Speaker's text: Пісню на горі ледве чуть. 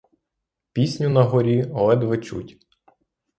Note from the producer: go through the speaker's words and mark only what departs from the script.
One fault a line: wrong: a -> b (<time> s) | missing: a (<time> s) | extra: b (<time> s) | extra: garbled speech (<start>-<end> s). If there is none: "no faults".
no faults